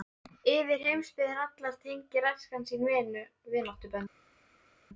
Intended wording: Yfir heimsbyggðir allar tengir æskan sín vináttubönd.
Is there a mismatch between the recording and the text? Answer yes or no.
no